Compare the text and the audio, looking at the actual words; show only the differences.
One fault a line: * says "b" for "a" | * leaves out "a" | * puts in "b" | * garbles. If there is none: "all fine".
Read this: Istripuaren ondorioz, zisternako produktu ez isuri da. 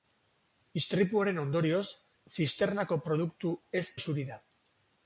all fine